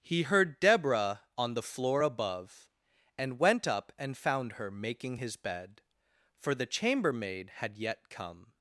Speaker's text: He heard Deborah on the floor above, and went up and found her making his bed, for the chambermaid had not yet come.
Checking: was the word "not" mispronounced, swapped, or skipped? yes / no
yes